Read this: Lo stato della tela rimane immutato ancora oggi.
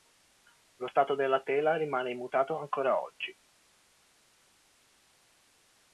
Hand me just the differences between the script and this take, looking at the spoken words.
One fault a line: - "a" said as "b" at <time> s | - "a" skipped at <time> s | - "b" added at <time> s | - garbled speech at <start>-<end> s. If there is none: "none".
none